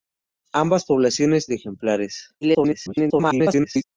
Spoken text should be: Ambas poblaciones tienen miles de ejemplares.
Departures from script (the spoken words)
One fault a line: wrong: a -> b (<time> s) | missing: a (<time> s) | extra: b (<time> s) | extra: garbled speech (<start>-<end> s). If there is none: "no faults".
missing: tienen miles (1.5 s)
extra: garbled speech (2.4-3.8 s)